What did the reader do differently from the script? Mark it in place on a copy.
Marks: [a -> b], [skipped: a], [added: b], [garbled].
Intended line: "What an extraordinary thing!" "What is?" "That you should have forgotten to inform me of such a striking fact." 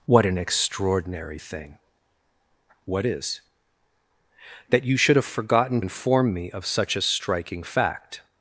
"What an extraordinary thing!" "What is?" "That you should have forgotten [skipped: to] inform me of such a striking fact."